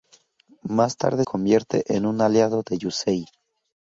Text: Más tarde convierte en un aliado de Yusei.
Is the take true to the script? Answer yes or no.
yes